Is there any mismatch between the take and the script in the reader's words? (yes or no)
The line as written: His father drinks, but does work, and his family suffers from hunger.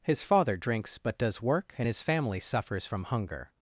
no